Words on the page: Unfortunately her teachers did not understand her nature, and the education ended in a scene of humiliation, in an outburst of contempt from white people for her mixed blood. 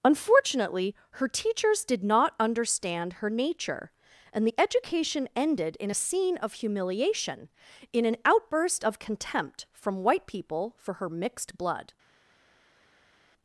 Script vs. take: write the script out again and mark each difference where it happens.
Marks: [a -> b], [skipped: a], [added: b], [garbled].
Unfortunately her teachers did not understand her nature, and the education ended in a scene of humiliation, in an outburst of contempt from white people for her mixed blood.